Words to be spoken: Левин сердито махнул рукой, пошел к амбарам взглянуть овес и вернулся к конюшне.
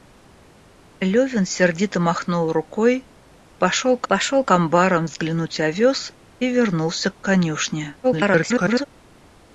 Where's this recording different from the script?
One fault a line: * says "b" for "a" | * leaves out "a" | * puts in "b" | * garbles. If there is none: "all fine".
* puts in "пошел к"
* garbles